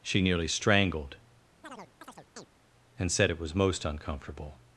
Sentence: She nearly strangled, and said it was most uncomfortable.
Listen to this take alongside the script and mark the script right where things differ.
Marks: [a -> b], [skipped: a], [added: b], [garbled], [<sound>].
She nearly strangled, [chirp] and said it was most uncomfortable.